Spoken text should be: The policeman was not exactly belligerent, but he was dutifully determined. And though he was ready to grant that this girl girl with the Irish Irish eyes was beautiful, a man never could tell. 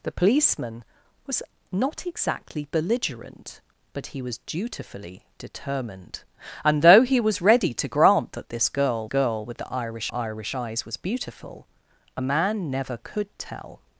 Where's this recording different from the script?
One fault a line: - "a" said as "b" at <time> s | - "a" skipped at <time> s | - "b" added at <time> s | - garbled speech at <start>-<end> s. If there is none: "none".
none